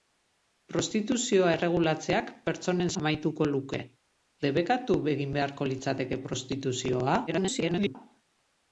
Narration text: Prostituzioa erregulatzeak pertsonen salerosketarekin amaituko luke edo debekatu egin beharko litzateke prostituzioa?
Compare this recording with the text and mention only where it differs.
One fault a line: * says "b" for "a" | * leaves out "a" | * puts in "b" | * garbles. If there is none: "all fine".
* leaves out "salerosketarekin"
* leaves out "edo"
* garbles